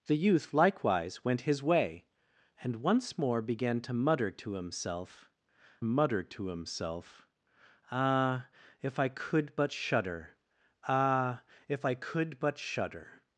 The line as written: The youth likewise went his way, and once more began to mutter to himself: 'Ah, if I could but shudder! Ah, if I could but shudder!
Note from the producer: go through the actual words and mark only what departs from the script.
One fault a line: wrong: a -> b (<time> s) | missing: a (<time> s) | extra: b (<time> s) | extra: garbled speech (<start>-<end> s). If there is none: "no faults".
extra: mutter to himself (5.8 s)